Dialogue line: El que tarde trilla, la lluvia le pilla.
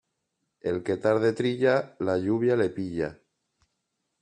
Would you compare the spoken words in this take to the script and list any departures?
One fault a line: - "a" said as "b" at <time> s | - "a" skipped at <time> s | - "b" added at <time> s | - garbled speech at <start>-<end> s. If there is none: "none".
none